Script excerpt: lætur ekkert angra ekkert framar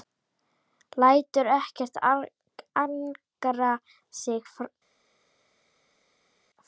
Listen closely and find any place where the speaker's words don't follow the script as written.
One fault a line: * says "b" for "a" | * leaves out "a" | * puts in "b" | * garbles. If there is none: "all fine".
* says "sig" for "ekkert"